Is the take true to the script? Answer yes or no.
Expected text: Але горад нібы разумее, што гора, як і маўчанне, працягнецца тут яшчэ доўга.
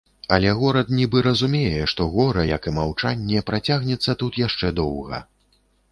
yes